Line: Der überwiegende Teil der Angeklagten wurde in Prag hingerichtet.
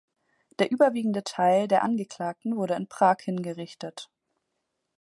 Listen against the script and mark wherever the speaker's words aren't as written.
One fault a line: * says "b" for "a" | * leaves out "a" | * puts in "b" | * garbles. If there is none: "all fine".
all fine